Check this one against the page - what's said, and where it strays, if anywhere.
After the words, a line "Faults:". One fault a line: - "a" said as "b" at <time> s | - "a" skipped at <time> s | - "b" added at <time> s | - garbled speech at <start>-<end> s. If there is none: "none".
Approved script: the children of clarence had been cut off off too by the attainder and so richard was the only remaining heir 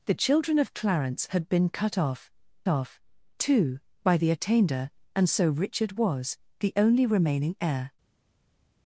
the children of clarence had been cut off off too by the attainder and so richard was the only remaining heir
Faults:
none